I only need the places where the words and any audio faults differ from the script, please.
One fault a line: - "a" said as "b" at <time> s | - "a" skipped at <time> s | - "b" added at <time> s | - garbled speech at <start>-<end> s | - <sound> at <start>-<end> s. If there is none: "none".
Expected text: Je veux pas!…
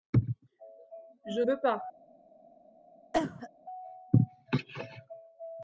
- cough at 3.1-3.5 s